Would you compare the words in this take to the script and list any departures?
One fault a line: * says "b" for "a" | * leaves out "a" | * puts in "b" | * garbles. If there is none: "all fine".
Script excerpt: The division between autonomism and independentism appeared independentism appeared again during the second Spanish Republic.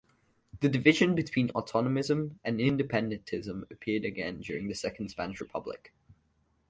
* leaves out "independentism appeared"